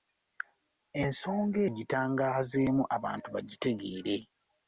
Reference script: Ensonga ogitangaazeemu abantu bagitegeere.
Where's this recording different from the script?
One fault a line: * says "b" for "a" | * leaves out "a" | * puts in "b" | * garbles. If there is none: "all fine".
all fine